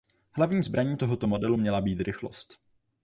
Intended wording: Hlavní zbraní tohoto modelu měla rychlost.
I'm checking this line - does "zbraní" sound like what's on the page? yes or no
yes